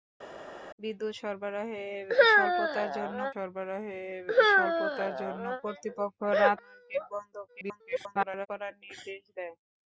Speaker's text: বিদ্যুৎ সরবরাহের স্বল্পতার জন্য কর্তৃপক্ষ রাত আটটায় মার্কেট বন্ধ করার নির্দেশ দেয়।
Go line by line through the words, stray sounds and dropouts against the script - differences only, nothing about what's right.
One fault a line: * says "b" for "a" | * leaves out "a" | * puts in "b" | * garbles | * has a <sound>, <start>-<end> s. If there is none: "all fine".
* puts in "সরবরাহের স্বল্পতার জন্য"
* leaves out "আটটায়"
* garbles